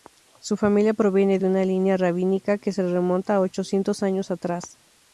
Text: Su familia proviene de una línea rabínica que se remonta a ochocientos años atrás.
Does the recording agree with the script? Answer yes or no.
yes